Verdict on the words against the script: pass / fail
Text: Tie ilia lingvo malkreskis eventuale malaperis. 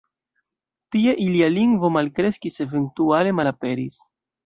pass